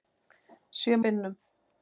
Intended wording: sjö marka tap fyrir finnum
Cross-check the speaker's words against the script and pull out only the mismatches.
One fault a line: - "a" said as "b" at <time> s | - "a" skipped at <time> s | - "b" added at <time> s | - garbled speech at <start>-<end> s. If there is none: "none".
- "marka tap fyrir" skipped at 1.0 s